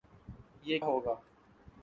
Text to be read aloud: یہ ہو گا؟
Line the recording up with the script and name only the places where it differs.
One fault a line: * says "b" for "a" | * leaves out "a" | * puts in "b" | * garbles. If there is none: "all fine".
all fine